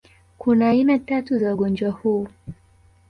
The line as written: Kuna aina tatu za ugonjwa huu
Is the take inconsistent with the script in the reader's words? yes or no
no